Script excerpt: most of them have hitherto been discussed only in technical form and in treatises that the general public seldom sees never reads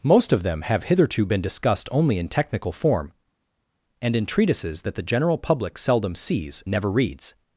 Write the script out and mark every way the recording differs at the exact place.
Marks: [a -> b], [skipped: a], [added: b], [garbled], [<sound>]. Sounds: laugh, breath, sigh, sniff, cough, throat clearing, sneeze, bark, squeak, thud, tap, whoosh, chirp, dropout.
most of them have hitherto been discussed only in technical form and in treatises that the general public seldom sees never reads